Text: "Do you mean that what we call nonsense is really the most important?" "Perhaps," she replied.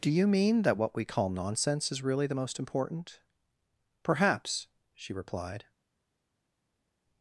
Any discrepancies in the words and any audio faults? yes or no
no